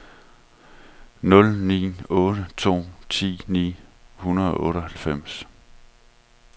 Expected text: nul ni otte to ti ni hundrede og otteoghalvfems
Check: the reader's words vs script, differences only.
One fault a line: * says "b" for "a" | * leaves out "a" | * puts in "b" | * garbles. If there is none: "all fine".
all fine